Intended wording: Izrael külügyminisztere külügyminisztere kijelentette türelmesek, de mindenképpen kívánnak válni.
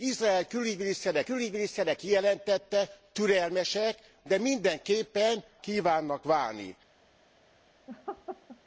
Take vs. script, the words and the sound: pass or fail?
fail